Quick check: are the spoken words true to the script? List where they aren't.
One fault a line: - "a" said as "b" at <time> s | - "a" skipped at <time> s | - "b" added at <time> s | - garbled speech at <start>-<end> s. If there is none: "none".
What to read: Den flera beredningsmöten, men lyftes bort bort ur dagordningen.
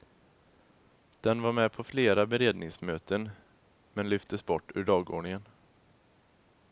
- "var med på" added at 1.4 s
- "bort" skipped at 4.7 s